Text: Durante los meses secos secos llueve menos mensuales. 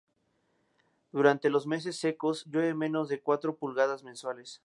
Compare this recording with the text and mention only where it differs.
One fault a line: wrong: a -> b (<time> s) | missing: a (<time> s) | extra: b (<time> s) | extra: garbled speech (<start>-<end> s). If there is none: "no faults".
missing: secos (2.5 s)
extra: de cuatro pulgadas (3.1 s)